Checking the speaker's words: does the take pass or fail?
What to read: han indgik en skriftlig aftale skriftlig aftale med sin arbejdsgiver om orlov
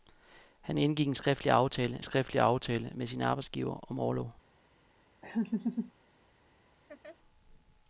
pass